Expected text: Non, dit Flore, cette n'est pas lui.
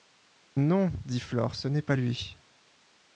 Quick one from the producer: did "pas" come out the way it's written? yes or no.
yes